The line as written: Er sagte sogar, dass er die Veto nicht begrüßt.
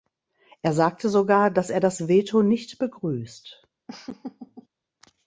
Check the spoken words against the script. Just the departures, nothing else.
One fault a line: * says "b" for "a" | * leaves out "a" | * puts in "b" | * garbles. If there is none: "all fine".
* says "das" for "die"